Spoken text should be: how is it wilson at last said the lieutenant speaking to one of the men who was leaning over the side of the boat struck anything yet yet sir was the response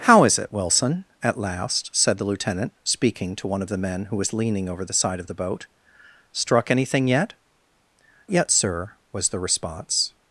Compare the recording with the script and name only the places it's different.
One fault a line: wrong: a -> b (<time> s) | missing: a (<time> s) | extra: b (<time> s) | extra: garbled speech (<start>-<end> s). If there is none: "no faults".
no faults